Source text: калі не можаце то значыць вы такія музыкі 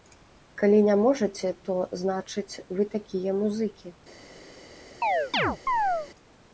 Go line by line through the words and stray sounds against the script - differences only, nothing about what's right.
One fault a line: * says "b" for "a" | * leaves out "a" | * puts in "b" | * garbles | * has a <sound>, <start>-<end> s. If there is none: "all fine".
* has a chirp, 5.0-6.1 s